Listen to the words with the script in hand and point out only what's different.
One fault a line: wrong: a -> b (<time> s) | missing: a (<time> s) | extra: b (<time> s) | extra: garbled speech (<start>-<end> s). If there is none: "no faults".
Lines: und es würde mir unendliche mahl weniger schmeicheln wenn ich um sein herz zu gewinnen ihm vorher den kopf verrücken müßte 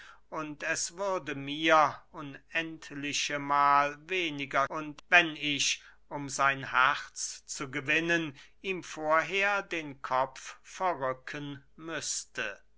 wrong: schmeicheln -> und (4.7 s)